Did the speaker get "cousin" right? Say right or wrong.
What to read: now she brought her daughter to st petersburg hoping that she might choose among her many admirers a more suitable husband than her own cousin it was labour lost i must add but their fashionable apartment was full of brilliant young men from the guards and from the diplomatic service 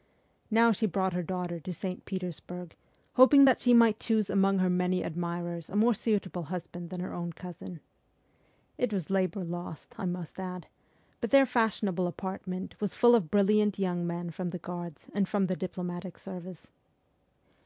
right